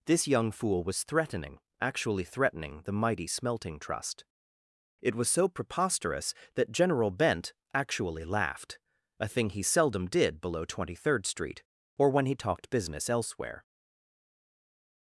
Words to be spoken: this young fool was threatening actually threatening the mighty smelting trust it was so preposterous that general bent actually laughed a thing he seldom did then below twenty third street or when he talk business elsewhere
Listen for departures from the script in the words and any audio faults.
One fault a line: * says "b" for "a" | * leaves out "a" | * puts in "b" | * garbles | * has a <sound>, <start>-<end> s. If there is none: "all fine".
* leaves out "then"
* says "talked" for "talk"